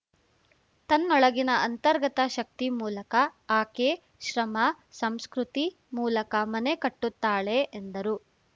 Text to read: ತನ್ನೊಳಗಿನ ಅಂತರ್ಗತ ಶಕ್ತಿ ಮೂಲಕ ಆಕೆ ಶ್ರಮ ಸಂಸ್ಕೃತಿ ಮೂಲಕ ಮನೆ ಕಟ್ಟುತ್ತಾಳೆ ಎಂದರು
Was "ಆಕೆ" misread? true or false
false